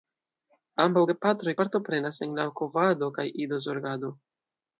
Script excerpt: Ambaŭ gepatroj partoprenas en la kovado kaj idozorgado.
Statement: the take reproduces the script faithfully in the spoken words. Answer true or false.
true